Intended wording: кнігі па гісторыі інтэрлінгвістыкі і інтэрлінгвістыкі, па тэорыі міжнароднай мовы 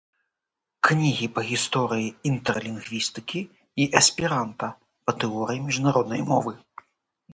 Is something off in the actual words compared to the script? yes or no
yes